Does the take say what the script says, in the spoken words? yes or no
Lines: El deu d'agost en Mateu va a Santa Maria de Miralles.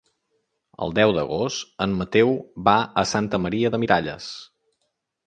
yes